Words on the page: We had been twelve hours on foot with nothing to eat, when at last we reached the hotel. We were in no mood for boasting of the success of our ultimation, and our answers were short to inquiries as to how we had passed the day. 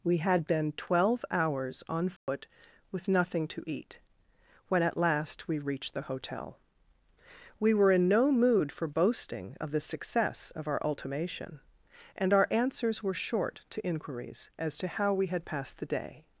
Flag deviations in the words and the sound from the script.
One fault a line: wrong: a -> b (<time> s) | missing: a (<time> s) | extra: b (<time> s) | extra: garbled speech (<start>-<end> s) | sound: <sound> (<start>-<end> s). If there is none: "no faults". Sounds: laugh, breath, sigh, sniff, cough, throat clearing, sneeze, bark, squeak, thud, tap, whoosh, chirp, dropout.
sound: dropout (2.2-2.3 s)